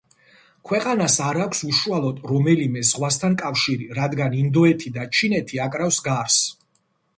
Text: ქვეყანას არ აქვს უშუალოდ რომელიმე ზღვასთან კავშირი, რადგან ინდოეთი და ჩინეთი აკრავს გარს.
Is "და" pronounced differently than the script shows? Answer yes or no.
no